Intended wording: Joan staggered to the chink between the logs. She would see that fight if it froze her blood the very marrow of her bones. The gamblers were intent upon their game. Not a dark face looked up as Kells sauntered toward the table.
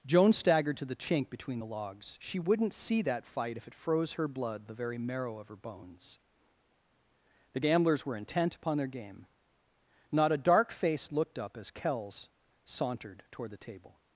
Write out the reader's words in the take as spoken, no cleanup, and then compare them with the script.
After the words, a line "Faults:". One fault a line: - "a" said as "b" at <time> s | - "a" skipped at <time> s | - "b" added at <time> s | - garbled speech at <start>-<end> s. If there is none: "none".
Joan staggered to the chink between the logs. She wouldn't see that fight if it froze her blood the very marrow of her bones. The gamblers were intent upon their game. Not a dark face looked up as Kells sauntered toward the table.
Faults:
- "would" said as "wouldn't" at 2.4 s